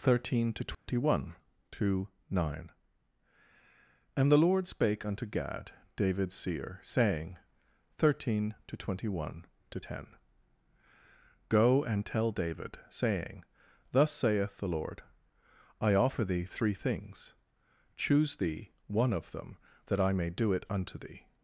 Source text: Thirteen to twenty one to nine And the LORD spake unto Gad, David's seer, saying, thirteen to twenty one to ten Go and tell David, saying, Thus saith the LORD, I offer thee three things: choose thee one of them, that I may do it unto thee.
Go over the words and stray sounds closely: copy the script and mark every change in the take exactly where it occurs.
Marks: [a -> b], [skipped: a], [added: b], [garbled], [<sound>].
Thirteen to twenty [dropout] one to nine And the LORD spake unto Gad, David's seer, saying, thirteen to twenty one to ten Go and tell David, saying, Thus saith the LORD, I offer thee three things: choose thee one of them, that I may do it unto thee.